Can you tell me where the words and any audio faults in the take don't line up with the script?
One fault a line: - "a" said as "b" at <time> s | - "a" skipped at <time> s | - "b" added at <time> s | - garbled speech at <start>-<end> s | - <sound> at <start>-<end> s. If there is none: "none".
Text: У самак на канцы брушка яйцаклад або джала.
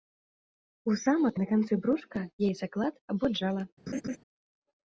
- laugh at 3.9-4.2 s